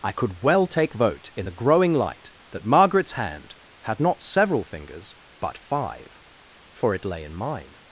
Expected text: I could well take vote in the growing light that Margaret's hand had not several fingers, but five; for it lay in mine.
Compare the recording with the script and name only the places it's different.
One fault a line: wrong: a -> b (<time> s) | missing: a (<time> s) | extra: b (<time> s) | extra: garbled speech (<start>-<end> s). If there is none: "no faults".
no faults